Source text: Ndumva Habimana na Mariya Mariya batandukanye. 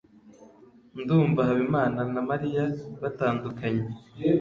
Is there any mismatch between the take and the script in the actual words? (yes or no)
yes